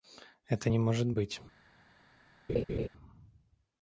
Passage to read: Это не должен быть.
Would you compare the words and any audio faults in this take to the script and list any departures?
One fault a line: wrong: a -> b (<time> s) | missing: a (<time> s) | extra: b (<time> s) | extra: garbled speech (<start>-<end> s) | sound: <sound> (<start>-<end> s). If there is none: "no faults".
wrong: должен -> может (0.8 s)
sound: laugh (2.5-2.9 s)